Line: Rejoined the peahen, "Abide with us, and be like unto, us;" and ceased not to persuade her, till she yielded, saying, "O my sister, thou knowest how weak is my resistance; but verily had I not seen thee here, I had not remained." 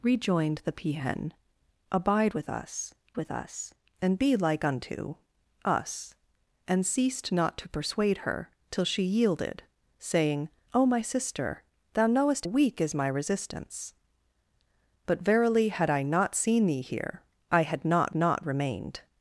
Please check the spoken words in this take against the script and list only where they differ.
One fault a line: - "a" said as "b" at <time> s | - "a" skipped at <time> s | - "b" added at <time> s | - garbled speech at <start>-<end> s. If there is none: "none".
- "with us" added at 3.1 s
- "how" skipped at 12.5 s
- "not" added at 18.2 s